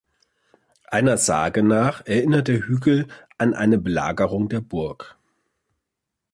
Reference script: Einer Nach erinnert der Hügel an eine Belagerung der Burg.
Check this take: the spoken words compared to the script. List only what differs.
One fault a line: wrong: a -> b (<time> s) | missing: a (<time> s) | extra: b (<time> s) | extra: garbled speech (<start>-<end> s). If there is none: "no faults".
extra: Sage (1.2 s)